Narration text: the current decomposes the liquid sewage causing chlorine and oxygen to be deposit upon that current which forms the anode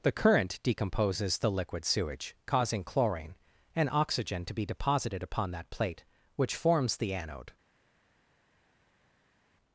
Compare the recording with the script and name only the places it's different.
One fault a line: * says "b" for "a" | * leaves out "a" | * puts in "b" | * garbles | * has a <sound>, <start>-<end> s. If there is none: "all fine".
* says "deposited" for "deposit"
* says "plate" for "current"